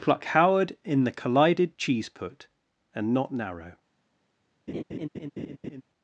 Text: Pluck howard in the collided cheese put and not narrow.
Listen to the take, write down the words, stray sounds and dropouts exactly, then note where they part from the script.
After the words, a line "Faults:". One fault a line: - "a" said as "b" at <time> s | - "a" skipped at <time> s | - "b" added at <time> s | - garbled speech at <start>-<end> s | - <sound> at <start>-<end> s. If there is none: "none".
Pluck howard in the collided cheese put and not narrow.
Faults:
- laugh at 4.7-5.8 s